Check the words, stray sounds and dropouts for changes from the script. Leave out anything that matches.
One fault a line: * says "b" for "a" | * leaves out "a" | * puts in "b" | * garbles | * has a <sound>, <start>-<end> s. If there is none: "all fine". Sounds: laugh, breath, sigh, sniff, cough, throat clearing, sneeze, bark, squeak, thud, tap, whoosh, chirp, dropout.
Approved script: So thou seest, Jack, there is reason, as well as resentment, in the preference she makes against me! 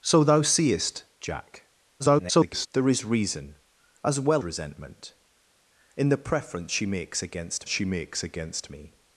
* garbles
* leaves out "as"
* puts in "she makes against"